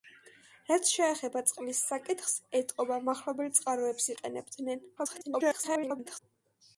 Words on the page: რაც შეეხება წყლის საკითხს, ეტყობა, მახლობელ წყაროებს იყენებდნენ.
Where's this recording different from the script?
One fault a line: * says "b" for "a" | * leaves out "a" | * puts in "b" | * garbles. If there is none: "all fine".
* garbles